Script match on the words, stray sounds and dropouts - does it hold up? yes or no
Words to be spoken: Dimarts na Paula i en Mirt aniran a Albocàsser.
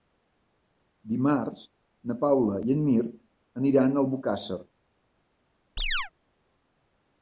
no